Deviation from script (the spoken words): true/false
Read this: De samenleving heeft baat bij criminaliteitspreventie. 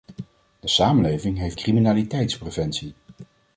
true